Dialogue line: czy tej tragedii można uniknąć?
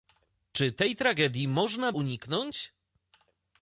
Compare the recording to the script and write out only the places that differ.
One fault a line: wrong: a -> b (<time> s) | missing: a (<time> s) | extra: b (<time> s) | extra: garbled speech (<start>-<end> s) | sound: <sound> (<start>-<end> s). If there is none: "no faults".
no faults